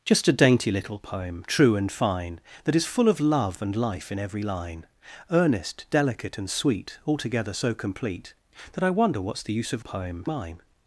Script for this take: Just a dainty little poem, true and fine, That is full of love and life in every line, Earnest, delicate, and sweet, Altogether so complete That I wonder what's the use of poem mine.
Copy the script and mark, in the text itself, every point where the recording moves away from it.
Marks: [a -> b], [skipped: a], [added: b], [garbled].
Just a dainty little poem, true and fine, That is full of love and life in every line, Earnest, delicate, and sweet, Altogether so complete That I wonder what's the use of poem mine.